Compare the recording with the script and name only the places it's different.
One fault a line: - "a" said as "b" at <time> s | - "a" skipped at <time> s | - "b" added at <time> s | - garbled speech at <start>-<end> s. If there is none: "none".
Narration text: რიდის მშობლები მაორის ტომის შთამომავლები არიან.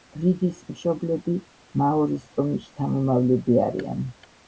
none